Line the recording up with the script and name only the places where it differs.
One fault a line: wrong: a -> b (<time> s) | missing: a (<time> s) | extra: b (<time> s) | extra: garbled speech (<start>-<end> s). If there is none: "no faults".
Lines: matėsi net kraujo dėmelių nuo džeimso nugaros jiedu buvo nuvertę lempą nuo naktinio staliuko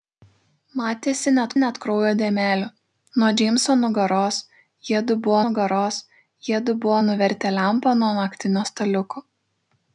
extra: net (1.6 s)
extra: nugaros jiedu buvo (5.4 s)